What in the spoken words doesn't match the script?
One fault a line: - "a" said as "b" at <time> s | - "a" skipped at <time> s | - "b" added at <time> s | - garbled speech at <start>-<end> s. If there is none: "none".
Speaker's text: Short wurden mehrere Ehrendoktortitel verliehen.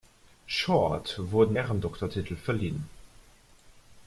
- "mehrere" skipped at 1.6 s